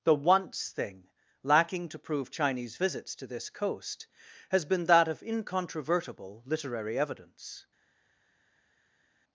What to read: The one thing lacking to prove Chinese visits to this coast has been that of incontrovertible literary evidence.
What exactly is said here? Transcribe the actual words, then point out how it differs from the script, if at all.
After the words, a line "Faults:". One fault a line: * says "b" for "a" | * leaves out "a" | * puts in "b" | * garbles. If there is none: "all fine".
The once thing lacking to prove Chinese visits to this coast has been that of incontrovertible literary evidence.
Faults:
* says "once" for "one"